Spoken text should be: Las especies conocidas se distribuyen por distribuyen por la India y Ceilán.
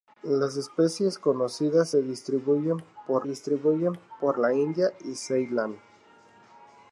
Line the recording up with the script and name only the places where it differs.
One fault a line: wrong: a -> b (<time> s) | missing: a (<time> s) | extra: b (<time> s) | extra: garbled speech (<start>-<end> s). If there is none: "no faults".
no faults